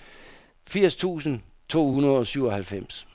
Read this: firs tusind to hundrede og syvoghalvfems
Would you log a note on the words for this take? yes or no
no